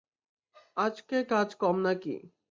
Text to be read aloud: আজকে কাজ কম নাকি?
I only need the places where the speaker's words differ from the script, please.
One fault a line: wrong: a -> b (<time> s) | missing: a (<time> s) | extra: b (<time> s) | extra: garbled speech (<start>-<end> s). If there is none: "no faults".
no faults